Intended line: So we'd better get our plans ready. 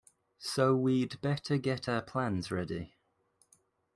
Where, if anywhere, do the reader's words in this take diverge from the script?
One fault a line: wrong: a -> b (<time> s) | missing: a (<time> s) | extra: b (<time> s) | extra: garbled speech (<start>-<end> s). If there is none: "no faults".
no faults